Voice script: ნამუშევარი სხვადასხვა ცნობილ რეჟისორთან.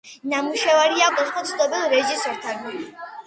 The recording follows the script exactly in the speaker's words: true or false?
true